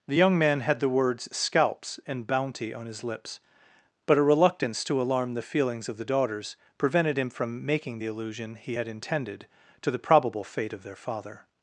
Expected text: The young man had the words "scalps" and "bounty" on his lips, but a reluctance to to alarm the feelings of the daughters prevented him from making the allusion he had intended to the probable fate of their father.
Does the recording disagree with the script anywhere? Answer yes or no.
yes